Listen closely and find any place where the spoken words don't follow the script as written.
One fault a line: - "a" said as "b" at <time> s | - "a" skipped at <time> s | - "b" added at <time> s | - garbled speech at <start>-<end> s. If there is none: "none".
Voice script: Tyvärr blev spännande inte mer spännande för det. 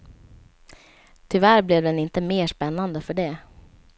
- "spännande" said as "den" at 1.8 s